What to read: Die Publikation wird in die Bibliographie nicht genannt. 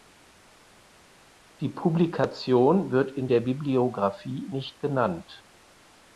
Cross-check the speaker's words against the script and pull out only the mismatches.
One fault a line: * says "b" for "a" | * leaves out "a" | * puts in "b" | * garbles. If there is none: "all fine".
* says "der" for "die"